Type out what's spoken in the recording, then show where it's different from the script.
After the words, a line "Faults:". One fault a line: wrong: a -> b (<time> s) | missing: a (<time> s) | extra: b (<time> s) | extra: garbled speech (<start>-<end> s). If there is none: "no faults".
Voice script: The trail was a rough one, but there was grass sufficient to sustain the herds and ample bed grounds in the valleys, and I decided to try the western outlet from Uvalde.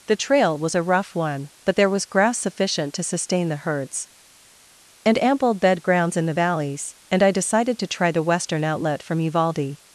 The trail was a rough one, but there was grass sufficient to sustain the herds and ample bed grounds in the valleys, and I decided to try the western outlet from Uvalde.
Faults:
no faults